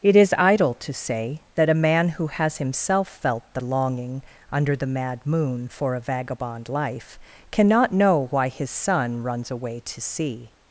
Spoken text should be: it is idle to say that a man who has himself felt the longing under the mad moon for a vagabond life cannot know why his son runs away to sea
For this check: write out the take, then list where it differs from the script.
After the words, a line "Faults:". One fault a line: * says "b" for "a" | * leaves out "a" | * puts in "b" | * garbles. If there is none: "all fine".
it is idle to say that a man who has himself felt the longing under the mad moon for a vagabond life cannot know why his son runs away to sea
Faults:
all fine